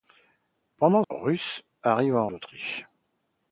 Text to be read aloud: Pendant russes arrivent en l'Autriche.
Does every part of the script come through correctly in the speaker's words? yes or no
yes